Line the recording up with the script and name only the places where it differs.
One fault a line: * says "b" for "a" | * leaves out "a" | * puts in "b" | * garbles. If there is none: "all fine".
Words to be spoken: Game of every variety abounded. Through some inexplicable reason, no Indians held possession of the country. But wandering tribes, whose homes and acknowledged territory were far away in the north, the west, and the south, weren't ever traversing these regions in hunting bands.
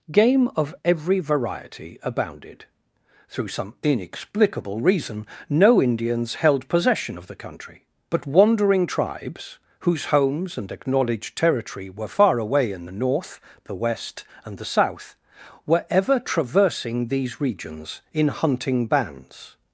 * says "were" for "weren't"